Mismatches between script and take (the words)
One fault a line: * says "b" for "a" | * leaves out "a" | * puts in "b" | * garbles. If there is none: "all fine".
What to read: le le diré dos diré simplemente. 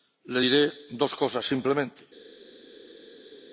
* leaves out "le"
* says "cosas" for "diré"